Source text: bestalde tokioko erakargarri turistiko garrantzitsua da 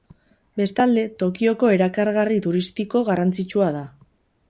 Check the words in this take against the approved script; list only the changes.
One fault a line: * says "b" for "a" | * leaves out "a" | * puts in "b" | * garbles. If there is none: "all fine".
all fine